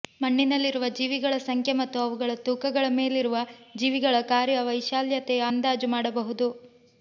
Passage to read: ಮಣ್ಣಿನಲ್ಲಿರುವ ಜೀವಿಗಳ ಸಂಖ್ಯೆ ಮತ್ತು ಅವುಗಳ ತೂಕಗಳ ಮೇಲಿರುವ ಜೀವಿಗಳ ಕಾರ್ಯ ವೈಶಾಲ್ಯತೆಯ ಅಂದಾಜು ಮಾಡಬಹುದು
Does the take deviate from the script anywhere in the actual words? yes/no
no